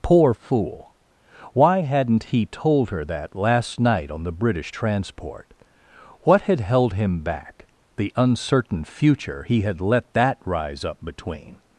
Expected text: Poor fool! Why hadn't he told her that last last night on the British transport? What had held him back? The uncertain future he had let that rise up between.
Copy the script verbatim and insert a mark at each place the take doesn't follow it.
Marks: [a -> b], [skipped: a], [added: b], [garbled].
Poor fool! Why hadn't he told her that last [skipped: last] night on the British transport? What had held him back? The uncertain future he had let that rise up between.